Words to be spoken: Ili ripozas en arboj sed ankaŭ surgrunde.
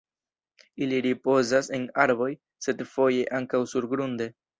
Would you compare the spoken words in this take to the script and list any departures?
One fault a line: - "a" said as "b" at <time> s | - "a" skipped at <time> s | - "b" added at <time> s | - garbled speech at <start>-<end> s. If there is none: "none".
- "foje" added at 3.0 s